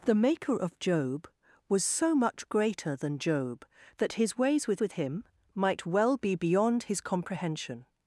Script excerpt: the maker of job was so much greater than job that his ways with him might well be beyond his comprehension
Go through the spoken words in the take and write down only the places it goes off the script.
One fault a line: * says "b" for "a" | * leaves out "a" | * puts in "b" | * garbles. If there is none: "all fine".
* puts in "with"